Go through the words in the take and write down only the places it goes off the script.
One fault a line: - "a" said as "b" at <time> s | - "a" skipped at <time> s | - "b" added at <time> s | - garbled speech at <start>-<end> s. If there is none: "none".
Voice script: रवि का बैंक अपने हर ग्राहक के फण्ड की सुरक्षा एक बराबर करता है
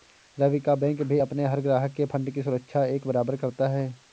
- "भी" added at 1.0 s